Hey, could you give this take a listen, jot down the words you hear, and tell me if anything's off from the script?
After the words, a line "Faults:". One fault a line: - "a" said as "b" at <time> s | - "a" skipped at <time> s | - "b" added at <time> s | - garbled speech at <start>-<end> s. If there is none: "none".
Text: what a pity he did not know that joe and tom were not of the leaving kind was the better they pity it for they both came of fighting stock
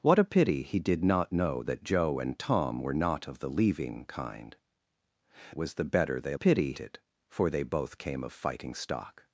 what a pity he did not know that joe and tom were not of the leaving kind was the better they pity it for they both came of fighting stock
Faults:
none